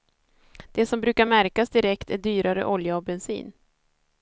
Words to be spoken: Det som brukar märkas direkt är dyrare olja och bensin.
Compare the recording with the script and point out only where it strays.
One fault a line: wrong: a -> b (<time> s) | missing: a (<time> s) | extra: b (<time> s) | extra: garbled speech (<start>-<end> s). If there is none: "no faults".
no faults